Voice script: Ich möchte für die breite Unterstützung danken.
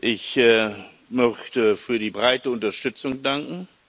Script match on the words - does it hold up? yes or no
yes